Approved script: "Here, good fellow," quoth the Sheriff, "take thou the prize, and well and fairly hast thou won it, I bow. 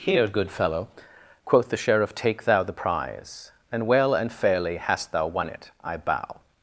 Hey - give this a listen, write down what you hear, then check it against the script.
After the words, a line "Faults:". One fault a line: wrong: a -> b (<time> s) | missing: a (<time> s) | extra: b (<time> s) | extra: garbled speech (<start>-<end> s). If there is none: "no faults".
"Here, good fellow," quoth the Sheriff, "take thou the prize, and well and fairly hast thou won it, I bow.
Faults:
no faults